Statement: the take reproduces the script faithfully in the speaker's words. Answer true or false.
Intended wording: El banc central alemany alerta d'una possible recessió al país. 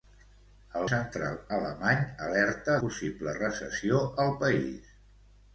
false